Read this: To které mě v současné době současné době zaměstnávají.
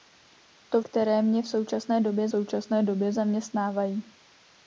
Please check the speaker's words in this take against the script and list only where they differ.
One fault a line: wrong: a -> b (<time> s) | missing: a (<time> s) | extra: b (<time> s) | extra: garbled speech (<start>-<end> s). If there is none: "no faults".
no faults